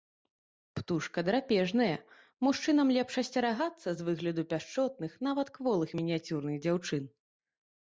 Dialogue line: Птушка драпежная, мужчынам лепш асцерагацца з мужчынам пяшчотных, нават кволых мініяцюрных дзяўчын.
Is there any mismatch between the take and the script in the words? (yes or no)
yes